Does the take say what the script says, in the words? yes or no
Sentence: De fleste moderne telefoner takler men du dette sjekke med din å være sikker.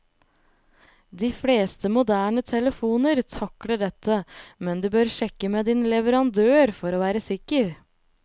no